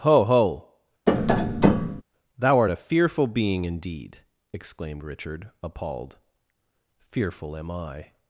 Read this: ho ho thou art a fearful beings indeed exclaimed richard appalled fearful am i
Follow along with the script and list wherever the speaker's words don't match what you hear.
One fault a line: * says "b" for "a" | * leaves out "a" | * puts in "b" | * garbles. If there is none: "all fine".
* says "being" for "beings"